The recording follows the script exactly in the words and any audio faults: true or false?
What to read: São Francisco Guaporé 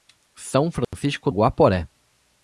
false